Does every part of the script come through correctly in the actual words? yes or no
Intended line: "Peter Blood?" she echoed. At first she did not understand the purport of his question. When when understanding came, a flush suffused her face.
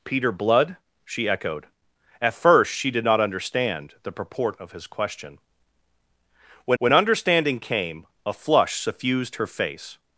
yes